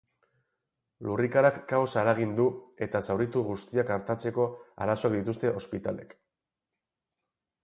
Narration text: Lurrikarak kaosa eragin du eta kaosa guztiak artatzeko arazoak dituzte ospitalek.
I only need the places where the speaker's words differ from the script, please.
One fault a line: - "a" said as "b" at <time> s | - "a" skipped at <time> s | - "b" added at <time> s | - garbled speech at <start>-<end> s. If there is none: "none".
- "kaosa" said as "zauritu" at 3.1 s